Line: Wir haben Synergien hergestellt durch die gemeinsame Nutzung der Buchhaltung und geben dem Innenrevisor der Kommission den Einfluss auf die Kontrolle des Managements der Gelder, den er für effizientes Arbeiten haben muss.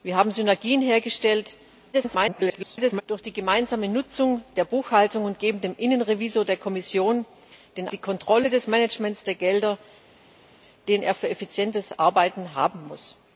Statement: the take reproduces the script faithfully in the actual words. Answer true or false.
false